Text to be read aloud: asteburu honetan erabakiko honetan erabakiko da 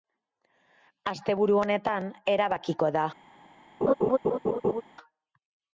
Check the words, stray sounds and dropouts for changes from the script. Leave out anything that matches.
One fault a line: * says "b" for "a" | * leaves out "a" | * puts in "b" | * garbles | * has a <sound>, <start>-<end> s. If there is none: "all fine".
* leaves out "honetan erabakiko"
* has a laugh, 3.8-4.8 s